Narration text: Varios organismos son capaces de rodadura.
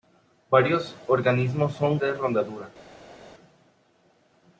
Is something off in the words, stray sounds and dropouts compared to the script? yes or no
yes